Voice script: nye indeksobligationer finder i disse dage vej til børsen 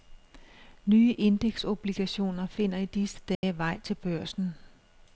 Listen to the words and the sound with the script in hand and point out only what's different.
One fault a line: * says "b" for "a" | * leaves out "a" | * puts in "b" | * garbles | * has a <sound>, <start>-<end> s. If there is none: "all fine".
* has a dropout, 3.3-3.4 s